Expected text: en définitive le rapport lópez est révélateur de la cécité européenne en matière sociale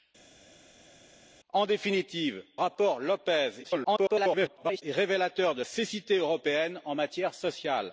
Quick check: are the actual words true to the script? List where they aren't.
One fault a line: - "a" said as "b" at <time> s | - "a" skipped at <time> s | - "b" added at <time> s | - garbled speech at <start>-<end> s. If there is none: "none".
- "le" skipped at 2.4 s
- garbled speech at 3.6-4.8 s
- "la" skipped at 5.6 s